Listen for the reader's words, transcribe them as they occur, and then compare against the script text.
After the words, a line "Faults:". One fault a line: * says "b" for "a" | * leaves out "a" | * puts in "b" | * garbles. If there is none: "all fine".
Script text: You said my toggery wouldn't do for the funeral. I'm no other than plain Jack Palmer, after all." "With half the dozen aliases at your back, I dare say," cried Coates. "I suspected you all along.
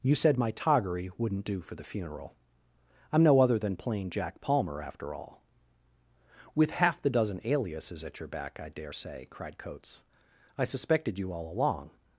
You said my toggery wouldn't do for the funeral. I'm no other than plain Jack Palmer, after all." "With half the dozen aliases at your back, I dare say," cried Coates. "I suspected you all along.
Faults:
all fine